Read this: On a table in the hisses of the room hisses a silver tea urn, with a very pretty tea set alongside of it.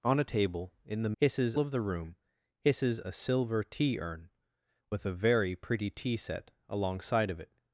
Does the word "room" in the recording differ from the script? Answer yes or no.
no